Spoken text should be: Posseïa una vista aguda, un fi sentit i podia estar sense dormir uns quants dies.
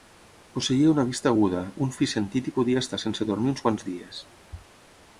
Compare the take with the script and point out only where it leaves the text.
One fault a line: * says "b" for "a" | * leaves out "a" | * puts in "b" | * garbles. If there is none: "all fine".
all fine